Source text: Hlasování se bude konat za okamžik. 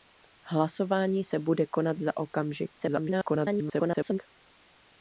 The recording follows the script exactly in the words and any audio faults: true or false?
false